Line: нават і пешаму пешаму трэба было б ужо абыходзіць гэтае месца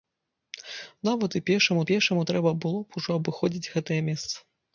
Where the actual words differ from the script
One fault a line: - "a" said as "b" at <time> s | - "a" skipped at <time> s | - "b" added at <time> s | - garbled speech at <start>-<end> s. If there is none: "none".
none